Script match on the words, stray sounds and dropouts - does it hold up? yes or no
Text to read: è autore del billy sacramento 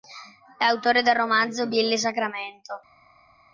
no